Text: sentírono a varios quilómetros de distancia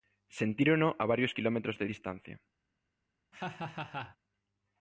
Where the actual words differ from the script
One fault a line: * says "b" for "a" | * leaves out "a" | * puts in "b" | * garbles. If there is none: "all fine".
all fine